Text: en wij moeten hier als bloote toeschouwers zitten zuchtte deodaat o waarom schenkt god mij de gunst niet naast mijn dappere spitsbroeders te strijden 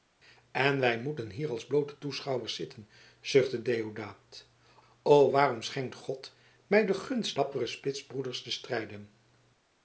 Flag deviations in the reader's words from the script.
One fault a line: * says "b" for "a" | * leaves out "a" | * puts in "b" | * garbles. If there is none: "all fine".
* leaves out "niet naast mijn"